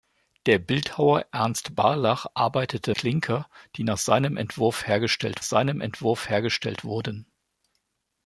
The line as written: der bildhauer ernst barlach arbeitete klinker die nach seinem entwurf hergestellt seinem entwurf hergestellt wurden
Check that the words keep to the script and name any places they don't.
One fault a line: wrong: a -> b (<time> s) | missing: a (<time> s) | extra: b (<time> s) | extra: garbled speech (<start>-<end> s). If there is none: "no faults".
no faults